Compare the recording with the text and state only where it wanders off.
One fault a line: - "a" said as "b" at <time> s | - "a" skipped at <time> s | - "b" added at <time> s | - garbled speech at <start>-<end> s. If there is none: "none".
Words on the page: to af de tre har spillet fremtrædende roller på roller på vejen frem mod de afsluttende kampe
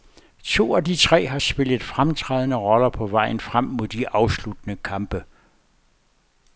- "roller på" skipped at 3.1 s